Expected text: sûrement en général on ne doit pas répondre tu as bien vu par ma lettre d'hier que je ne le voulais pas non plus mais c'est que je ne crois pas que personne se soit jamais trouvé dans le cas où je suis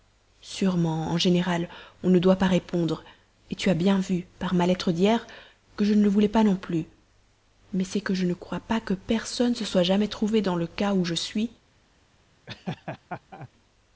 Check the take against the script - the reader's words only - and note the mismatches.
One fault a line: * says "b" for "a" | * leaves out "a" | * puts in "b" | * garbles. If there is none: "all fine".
all fine